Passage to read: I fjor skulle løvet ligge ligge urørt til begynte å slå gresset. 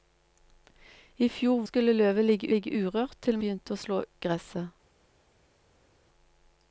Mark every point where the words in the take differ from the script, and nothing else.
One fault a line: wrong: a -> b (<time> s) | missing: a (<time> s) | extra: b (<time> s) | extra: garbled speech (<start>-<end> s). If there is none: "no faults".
no faults